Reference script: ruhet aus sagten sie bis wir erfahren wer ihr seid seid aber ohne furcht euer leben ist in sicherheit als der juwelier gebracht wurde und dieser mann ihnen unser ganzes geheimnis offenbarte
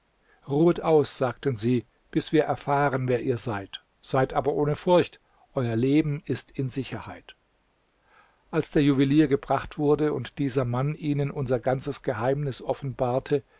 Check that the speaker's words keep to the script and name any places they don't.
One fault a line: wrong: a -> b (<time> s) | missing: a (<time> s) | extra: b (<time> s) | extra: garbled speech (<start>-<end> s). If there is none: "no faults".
no faults